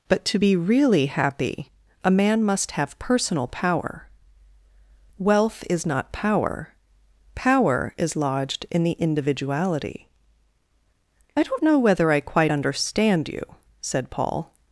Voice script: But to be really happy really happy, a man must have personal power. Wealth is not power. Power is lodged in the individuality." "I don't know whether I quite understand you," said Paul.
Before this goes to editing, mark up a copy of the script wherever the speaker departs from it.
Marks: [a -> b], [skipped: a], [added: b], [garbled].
But to be really happy [skipped: really happy,] a man must have personal power. Wealth is not power. Power is lodged in the individuality." "I don't know whether I quite understand you," said Paul.